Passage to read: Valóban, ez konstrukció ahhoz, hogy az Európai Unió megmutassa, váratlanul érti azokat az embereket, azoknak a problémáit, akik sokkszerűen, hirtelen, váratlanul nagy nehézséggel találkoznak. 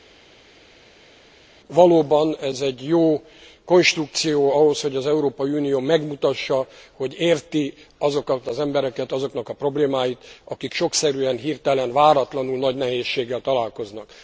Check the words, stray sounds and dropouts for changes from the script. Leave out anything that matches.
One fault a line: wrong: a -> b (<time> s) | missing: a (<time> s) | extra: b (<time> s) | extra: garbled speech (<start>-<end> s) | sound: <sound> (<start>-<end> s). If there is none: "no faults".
extra: egy jó (2.6 s)
wrong: váratlanul -> hogy (6.9 s)